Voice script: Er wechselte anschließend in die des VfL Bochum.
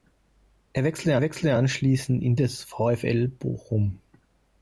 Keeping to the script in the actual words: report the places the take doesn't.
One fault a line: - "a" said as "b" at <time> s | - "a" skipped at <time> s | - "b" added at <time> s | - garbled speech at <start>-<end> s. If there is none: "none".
- "wechselte" added at 1.2 s
- "die" skipped at 2.4 s